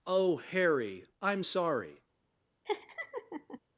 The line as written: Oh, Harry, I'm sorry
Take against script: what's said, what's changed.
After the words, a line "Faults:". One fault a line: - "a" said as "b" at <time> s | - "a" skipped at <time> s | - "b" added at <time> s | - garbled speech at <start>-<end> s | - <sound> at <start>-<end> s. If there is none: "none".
Oh, Harry, I'm sorry
Faults:
- laugh at 2.6-3.6 s